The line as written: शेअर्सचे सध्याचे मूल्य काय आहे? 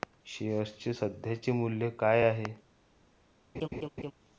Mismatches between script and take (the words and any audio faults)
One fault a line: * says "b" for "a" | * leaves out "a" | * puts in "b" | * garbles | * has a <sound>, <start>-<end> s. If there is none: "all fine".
* has a laugh, 3.5-4.1 s